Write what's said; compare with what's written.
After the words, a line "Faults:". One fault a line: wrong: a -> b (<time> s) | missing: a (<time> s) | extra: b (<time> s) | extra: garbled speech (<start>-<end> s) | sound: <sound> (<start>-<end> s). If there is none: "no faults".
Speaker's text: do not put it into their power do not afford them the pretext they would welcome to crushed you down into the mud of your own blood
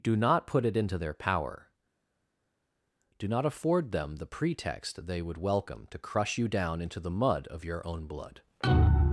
do not put it into their power do not afford them the pretext they would welcome to crush you down into the mud of your own blood
Faults:
wrong: crushed -> crush (6.0 s)